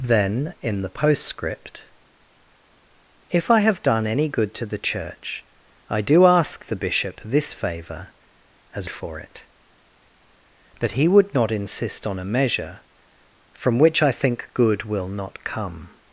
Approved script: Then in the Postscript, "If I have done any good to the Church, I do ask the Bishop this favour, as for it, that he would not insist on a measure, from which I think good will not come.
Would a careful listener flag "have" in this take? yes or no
no